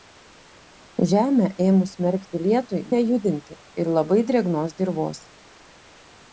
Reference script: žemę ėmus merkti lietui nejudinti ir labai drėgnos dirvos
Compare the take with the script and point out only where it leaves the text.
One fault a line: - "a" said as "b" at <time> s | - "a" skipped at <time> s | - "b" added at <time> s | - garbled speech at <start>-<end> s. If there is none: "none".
none